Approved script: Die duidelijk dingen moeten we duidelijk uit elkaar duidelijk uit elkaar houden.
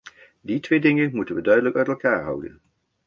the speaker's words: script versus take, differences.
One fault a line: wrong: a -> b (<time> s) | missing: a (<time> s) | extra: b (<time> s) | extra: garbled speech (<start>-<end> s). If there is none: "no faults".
wrong: duidelijk -> twee (0.6 s)
missing: duidelijk uit elkaar (2.2 s)